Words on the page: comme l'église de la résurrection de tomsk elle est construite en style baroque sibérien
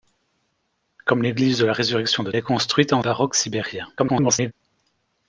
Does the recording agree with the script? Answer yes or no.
no